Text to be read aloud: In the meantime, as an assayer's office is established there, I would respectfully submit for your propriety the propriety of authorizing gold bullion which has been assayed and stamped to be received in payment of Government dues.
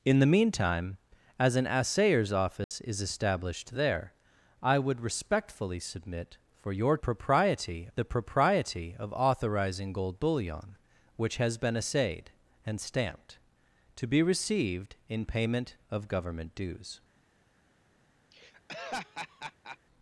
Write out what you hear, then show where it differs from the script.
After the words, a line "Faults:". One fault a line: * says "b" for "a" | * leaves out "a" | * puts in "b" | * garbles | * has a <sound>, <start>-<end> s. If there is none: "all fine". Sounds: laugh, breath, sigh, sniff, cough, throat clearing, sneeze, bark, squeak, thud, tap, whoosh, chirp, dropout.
In the meantime, as an assayer's office is established there, I would respectfully submit for your propriety the propriety of authorizing gold bullion which has been assayed and stamped to be received in payment of Government dues.
Faults:
* has a dropout, 2.6-2.7 s
* has a laugh, 18.3-19.8 s